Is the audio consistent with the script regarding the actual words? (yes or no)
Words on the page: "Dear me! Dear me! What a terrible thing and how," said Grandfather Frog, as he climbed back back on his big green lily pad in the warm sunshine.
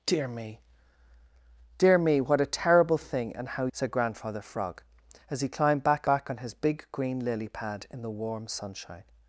yes